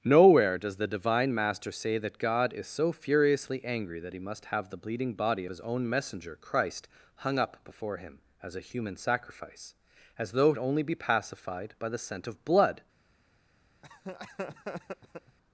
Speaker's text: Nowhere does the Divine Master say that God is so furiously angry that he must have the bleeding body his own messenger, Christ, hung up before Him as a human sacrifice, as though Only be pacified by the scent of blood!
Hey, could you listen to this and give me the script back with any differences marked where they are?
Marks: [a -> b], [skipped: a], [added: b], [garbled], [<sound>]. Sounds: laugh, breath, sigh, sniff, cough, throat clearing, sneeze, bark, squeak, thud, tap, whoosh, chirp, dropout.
Nowhere does the Divine Master say that God is so furiously angry that he must have the bleeding body his own messenger, Christ, hung up before Him as a human sacrifice, as though Only be pacified by the scent of blood! [laugh]